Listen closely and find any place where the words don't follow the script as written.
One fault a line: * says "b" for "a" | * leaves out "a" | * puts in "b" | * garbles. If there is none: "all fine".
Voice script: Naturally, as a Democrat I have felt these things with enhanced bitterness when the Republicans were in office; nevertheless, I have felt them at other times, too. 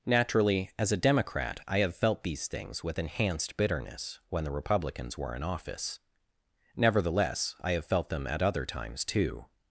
all fine